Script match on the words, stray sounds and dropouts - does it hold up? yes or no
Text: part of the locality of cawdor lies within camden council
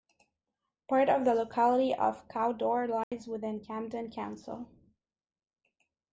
no